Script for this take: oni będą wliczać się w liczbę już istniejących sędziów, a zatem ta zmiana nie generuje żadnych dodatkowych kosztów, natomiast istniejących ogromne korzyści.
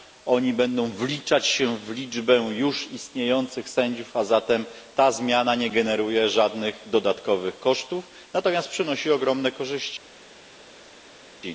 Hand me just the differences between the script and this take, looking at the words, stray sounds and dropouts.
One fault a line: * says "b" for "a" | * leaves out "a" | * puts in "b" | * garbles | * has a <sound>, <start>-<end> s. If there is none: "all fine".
* says "przynosi" for "istniejących"